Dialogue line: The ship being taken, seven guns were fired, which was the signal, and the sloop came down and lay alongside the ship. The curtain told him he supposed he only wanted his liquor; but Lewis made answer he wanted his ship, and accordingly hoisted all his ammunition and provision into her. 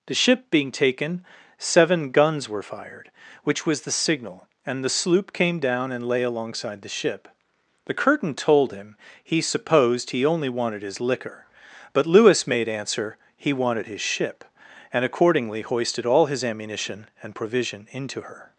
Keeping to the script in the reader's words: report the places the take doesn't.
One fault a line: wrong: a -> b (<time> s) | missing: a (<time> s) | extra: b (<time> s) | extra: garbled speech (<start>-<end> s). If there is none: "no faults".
no faults